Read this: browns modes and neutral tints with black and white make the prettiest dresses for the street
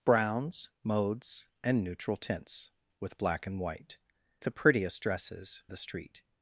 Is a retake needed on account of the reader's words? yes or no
yes